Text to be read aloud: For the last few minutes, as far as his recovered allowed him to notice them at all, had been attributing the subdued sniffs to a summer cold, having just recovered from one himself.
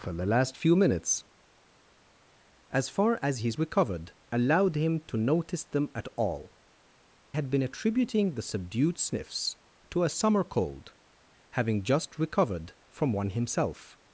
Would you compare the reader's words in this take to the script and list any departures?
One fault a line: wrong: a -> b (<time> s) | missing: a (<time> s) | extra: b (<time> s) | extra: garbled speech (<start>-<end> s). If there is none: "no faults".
no faults